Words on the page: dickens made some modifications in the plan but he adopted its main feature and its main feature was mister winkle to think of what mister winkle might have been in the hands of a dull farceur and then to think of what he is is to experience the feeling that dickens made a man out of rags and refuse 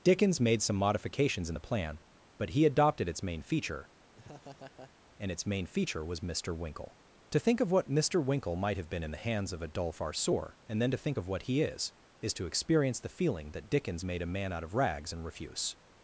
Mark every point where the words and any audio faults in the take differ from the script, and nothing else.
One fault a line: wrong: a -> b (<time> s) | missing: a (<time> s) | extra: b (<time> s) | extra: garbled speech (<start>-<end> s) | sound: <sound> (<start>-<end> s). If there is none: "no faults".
sound: laugh (4.1-4.9 s)